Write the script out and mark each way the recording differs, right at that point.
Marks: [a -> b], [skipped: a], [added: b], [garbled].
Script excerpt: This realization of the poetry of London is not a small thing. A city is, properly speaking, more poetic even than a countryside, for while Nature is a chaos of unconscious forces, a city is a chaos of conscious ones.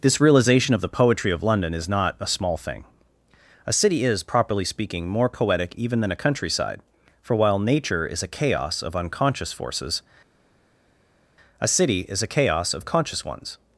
This realization of the poetry of London is not a small thing. A city is, properly speaking, more poetic even than a countryside, for while Nature is a chaos of unconscious forces, a city is a chaos of conscious ones.